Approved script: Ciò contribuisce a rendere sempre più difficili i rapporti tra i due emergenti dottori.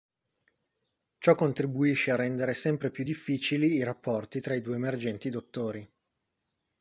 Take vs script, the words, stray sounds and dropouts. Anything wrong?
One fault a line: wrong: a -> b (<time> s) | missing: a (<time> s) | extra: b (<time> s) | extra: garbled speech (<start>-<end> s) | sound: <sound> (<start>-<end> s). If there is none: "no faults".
no faults